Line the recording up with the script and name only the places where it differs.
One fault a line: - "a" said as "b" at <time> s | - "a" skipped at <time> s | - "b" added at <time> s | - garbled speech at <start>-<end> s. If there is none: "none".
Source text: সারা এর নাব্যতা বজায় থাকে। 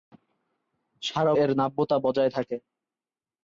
none